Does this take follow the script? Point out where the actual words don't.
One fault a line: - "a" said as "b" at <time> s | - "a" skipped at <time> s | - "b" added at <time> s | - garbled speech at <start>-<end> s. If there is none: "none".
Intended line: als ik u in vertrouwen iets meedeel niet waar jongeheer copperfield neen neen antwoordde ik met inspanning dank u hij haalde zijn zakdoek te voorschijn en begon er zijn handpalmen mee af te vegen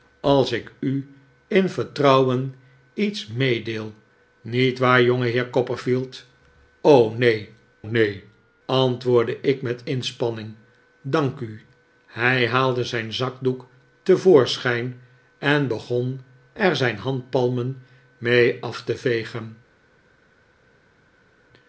none